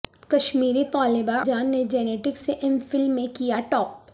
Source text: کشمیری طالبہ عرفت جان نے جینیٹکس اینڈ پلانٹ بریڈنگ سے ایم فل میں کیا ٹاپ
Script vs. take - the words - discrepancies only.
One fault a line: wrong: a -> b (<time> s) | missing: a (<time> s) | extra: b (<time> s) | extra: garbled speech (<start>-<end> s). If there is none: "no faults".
missing: عرفت (1.4 s)
missing: اینڈ پلانٹ بریڈنگ (2.4 s)